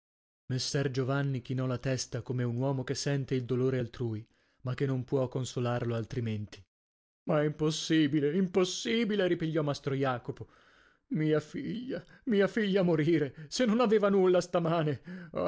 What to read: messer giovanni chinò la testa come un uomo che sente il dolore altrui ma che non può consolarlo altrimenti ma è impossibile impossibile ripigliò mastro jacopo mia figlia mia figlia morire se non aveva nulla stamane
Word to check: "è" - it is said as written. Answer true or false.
true